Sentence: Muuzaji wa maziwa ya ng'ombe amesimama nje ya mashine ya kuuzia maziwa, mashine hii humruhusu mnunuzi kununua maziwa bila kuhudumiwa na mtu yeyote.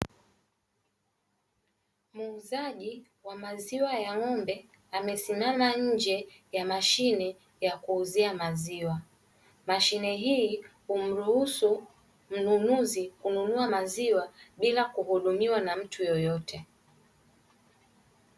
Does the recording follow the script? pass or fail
pass